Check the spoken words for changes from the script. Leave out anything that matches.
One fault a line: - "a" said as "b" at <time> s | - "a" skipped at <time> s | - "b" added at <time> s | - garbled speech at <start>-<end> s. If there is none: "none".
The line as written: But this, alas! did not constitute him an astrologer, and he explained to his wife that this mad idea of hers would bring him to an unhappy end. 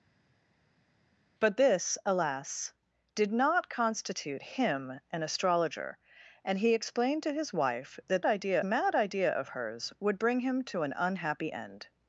- "this" said as "idea" at 8.2 s